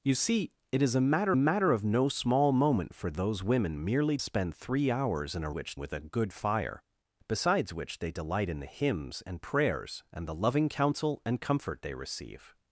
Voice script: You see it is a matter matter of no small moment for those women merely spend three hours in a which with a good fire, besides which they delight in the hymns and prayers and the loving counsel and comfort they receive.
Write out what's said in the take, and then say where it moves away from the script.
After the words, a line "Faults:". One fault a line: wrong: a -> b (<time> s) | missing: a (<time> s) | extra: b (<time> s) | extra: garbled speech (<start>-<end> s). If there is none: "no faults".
You see it is a matter matter of no small moment for those women merely spend three hours in a which with a good fire, besides which they delight in the hymns and prayers and the loving counsel and comfort they receive.
Faults:
no faults